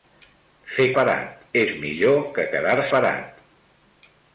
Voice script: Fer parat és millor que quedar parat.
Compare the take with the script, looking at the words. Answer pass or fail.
pass